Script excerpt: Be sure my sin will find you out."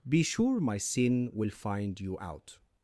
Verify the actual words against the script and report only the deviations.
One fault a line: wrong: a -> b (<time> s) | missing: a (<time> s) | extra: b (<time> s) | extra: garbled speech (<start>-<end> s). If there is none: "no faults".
no faults